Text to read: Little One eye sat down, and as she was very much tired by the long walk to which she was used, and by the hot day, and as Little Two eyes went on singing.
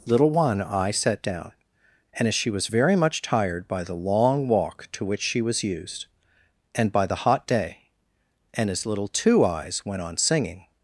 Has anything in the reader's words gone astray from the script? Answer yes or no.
no